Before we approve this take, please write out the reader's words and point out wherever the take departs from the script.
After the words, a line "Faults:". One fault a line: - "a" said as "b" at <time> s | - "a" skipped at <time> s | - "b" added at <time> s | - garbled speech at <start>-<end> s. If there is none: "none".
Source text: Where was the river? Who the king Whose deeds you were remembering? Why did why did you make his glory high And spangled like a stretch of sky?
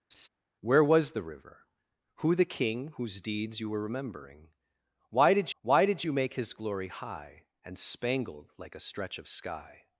Where was the river? Who the king Whose deeds you were remembering? Why did why did you make his glory high And spangled like a stretch of sky?
Faults:
none